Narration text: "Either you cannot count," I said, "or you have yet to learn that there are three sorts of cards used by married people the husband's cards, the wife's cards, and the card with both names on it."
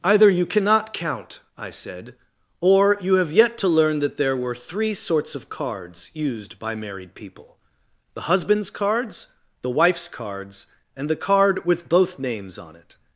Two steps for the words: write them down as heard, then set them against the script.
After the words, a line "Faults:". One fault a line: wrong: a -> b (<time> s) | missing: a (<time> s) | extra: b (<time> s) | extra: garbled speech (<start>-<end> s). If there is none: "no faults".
"Either you cannot count," I said, "or you have yet to learn that there were three sorts of cards used by married people the husband's cards, the wife's cards, and the card with both names on it."
Faults:
wrong: are -> were (4.3 s)